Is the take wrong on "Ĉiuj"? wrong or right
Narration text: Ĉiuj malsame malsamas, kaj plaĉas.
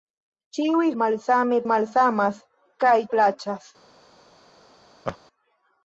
right